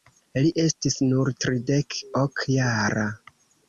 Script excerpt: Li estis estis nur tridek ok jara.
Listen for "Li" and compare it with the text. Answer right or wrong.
right